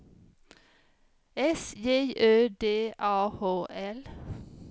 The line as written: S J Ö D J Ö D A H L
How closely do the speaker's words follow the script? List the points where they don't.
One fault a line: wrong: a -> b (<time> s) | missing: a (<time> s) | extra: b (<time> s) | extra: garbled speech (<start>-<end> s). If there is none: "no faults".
missing: J Ö D (2.9 s)